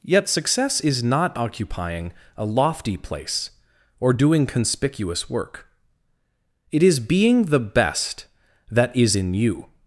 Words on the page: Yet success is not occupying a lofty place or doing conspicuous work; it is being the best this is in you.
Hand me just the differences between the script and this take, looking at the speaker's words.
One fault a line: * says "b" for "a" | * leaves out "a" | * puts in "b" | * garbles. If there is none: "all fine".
* says "that" for "this"